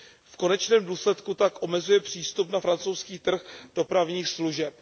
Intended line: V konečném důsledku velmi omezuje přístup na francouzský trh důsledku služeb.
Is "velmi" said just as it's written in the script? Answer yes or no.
no